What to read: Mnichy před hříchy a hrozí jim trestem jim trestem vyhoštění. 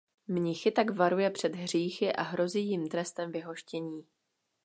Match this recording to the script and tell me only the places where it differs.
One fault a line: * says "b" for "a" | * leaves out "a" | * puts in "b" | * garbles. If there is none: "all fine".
* puts in "tak varuje"
* leaves out "jim trestem"